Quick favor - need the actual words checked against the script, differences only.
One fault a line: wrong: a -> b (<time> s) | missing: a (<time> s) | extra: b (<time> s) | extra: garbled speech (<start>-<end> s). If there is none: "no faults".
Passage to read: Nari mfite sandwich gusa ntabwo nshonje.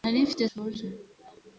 missing: sandwich gusa ntabwo (0.4 s)